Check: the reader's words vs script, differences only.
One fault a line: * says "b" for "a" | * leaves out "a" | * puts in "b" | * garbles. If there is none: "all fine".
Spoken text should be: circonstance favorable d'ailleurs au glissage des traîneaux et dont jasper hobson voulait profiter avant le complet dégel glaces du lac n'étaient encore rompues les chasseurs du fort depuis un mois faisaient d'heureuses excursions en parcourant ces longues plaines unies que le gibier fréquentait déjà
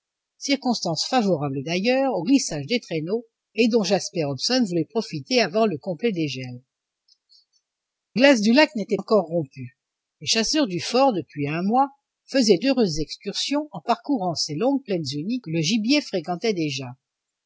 all fine